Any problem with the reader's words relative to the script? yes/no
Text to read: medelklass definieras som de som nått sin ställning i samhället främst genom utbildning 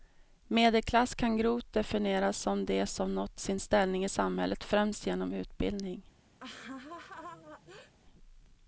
yes